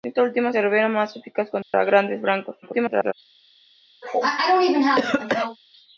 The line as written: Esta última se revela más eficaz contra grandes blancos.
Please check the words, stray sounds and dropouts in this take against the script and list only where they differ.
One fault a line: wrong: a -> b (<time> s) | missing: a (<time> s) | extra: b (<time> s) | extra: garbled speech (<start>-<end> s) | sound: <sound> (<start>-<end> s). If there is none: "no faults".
sound: dropout (1.6-1.7 s)
extra: garbled speech (2.6-3.1 s)
sound: cough (4.0-5.6 s)